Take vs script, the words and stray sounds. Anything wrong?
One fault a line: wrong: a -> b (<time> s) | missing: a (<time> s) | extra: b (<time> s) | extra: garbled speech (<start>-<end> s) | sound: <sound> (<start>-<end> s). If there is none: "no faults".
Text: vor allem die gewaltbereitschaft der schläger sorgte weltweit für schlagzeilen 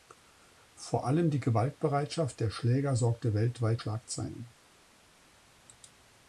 missing: für (3.8 s)